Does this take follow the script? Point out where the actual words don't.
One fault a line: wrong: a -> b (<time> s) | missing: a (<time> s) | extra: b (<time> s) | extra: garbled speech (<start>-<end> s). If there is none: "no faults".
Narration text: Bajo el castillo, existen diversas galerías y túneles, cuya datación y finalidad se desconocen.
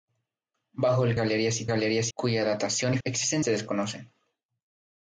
missing: castillo existen diversas (1.1 s)
wrong: túneles -> galerías (1.7 s)
wrong: finalidad -> existen (3.0 s)